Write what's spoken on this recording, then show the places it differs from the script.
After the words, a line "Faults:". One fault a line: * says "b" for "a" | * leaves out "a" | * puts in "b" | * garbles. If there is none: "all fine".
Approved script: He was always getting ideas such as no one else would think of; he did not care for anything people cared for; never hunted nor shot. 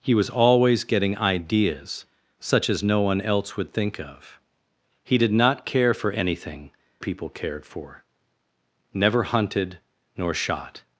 He was always getting ideas such as no one else would think of; he did not care for anything people cared for; never hunted nor shot.
Faults:
all fine